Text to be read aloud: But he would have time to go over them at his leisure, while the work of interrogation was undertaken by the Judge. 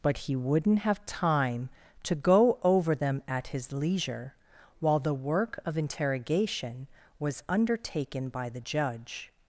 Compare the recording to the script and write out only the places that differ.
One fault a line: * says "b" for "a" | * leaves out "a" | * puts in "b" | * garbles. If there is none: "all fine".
* says "wouldn't" for "would"